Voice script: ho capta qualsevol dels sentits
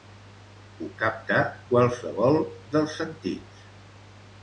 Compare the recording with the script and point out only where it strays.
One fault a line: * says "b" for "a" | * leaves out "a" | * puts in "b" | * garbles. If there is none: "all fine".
all fine